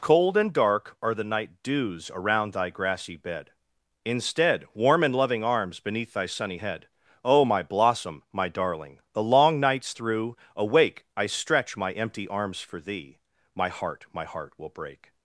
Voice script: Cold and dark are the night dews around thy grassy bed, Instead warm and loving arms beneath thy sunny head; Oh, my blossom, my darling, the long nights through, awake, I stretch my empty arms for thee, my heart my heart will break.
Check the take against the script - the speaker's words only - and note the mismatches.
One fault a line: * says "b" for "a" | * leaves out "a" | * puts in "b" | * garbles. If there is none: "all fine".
all fine